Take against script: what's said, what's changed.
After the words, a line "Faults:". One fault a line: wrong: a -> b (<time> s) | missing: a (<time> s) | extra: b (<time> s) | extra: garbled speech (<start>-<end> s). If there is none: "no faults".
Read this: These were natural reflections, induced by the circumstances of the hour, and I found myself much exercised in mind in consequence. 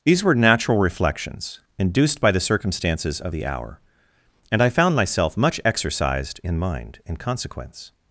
These were natural reflections, induced by the circumstances of the hour, and I found myself much exercised in mind in consequence.
Faults:
no faults